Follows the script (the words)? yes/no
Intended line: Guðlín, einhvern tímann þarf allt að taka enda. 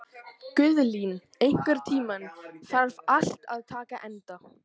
yes